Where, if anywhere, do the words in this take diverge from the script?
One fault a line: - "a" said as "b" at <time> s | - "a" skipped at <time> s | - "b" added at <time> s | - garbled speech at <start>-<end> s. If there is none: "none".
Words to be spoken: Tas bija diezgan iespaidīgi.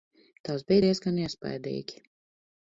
none